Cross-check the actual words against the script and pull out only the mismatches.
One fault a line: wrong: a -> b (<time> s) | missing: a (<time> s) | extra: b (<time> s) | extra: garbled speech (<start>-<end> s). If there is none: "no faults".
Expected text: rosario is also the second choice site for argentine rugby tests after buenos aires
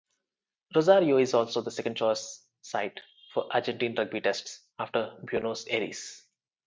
no faults